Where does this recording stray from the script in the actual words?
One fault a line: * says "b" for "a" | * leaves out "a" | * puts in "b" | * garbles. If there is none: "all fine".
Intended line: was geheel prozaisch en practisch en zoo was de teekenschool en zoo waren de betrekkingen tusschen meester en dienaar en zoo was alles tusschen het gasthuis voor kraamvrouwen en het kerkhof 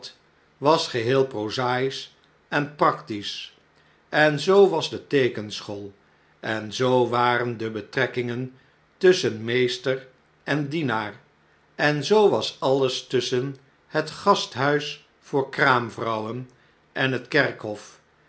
all fine